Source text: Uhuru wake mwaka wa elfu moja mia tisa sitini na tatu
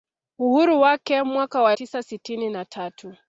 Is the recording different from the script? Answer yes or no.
yes